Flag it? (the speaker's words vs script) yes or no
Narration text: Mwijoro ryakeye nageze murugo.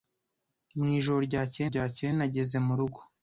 yes